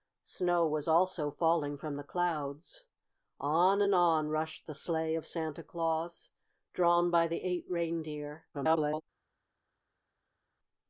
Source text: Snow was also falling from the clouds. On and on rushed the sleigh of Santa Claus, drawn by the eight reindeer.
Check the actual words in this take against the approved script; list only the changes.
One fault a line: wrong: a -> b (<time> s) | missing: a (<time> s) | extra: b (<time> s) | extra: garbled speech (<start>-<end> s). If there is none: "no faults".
extra: garbled speech (8.5-9.0 s)